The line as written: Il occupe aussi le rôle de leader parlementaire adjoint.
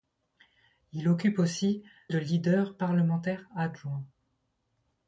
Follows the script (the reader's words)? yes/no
no